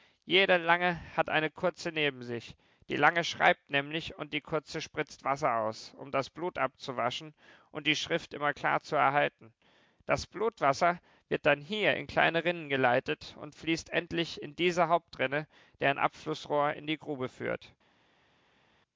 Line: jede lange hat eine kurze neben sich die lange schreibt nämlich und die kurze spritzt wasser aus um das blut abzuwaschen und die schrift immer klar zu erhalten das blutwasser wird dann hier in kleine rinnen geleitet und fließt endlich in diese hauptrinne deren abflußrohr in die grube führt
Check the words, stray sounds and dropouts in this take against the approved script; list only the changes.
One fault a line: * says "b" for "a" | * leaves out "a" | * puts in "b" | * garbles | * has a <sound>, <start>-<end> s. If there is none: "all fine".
all fine